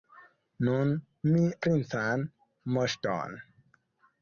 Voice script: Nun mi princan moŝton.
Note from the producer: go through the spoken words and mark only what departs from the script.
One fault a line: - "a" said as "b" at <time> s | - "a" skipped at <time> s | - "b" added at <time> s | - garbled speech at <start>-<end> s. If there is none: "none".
none